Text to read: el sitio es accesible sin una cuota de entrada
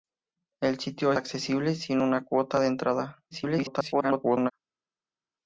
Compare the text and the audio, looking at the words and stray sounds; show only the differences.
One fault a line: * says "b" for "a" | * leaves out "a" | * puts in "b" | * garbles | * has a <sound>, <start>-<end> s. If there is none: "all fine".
* leaves out "es"
* garbles